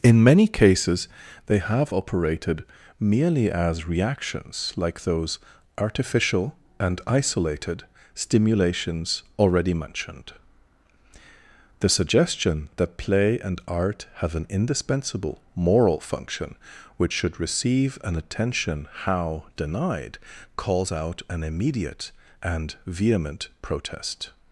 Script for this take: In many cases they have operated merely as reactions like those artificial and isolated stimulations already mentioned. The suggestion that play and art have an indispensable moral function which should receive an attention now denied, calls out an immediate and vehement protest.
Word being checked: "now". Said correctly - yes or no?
no